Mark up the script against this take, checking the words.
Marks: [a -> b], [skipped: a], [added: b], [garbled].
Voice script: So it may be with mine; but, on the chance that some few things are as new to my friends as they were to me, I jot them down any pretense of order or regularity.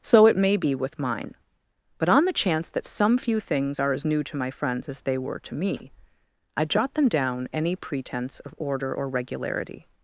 So it may be with mine; but, on the chance that some few things are as new to my friends as they were to me, I jot them down any pretense of order or regularity.